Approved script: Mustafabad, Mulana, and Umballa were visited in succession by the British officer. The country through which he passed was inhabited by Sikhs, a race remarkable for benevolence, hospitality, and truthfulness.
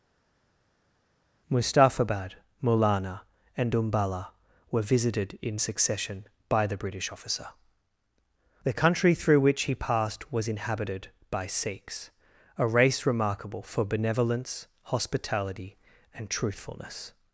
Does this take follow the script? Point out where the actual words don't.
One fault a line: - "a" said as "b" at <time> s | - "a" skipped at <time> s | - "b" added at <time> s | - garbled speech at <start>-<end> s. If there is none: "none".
none